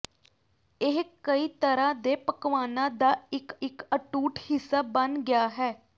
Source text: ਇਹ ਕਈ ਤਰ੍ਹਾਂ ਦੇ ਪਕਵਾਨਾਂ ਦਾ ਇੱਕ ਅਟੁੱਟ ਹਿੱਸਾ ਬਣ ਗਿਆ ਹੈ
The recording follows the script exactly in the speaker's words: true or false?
false